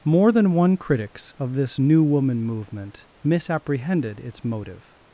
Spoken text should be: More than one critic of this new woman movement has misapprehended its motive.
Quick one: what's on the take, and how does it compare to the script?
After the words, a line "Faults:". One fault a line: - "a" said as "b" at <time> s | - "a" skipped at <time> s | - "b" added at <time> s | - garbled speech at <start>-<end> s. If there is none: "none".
More than one critics of this new woman movement misapprehended its motive.
Faults:
- "critic" said as "critics" at 0.8 s
- "has" skipped at 3.1 s